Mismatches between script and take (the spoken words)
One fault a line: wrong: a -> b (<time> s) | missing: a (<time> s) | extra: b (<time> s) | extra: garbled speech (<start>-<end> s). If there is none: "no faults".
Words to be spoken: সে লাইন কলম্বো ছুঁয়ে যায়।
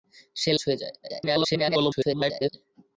missing: লাইন কলম্বো (0.5 s)
extra: garbled speech (1.0-2.5 s)